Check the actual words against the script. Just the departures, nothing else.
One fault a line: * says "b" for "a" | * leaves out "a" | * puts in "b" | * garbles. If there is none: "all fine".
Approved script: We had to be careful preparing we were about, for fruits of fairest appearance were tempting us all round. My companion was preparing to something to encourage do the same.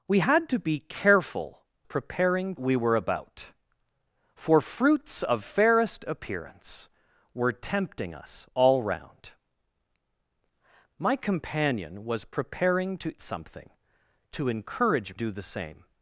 all fine